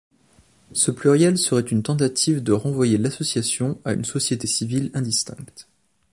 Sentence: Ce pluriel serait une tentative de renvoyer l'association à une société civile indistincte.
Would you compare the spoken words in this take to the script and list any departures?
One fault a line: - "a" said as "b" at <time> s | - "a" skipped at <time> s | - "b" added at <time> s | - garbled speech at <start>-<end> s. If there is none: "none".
none